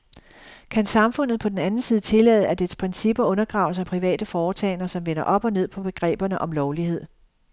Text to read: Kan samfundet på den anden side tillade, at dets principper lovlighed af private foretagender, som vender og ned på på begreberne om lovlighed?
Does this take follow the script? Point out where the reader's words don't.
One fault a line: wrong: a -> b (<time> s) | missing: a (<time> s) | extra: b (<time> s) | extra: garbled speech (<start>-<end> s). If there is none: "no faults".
wrong: lovlighed -> undergraves (3.2 s)
extra: op (5.2 s)
missing: på (5.8 s)